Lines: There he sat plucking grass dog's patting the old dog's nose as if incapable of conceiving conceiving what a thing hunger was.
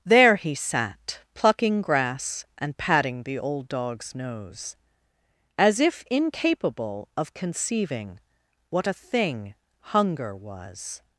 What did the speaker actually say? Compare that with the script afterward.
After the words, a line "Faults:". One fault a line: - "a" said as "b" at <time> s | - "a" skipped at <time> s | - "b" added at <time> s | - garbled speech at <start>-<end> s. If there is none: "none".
There he sat plucking grass and patting the old dog's nose as if incapable of conceiving what a thing hunger was.
Faults:
- "dog's" said as "and" at 2.6 s
- "conceiving" skipped at 8.2 s